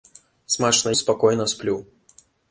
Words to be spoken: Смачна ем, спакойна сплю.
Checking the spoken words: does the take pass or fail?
fail